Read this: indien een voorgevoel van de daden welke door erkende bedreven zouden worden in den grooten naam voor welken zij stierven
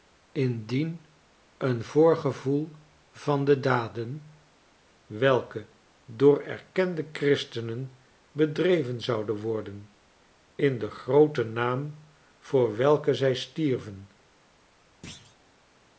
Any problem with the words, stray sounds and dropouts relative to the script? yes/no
yes